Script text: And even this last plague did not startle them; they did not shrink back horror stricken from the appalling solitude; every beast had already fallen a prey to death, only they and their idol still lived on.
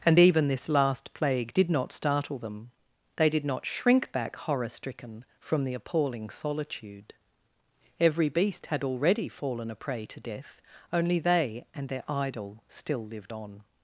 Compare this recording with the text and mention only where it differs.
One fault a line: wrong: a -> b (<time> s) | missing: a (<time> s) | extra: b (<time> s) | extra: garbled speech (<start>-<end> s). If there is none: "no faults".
no faults